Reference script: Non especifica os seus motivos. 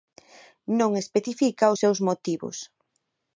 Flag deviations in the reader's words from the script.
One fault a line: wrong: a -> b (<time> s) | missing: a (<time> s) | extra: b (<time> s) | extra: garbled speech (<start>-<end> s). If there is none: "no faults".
no faults